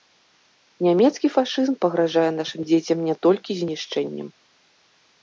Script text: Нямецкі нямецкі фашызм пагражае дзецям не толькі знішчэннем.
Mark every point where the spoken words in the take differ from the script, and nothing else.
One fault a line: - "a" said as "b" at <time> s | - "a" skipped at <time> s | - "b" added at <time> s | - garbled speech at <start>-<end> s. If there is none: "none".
- "нямецкі" skipped at 1.3 s
- "нашым" added at 2.4 s